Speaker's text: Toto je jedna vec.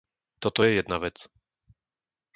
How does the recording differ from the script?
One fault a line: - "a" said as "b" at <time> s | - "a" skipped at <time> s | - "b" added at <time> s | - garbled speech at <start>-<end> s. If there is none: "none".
none